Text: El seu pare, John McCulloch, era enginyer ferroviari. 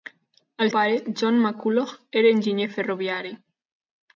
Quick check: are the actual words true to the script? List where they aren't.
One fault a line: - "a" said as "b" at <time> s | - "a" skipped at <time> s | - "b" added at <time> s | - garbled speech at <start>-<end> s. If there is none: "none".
- "seu" skipped at 0.7 s